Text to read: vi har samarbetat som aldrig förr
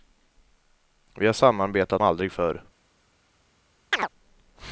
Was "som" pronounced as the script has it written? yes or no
no